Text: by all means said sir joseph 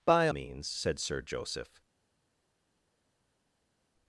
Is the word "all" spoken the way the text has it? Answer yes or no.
no